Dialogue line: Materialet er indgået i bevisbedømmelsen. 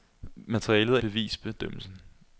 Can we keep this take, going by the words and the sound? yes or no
no